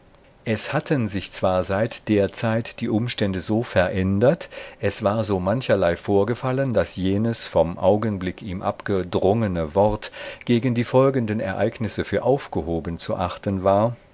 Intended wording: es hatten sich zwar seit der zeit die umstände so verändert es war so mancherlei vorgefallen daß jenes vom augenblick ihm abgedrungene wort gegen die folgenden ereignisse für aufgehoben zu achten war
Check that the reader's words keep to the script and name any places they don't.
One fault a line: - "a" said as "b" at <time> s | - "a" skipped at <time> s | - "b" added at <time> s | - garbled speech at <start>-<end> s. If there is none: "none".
none